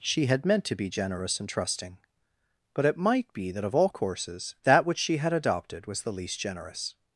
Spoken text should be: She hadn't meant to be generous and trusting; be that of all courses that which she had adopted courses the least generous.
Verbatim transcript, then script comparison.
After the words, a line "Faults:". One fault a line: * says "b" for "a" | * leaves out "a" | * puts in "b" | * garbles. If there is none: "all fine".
She had meant to be generous and trusting; but it might be that of all courses that which she had adopted was the least generous.
Faults:
* says "had" for "hadn't"
* puts in "but it might"
* says "was" for "courses"